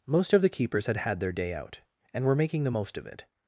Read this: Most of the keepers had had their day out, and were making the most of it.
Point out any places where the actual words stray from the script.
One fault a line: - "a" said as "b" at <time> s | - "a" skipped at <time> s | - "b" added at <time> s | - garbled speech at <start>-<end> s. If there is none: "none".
none